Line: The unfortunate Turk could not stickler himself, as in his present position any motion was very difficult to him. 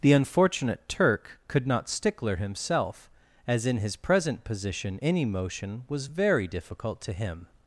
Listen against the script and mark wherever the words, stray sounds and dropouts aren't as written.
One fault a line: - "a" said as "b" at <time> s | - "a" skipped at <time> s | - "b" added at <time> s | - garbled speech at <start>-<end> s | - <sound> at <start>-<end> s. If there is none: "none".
none